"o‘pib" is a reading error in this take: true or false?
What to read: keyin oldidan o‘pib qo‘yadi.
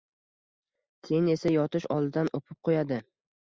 false